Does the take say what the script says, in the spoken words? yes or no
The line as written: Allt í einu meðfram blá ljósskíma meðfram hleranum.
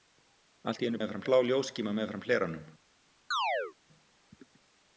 yes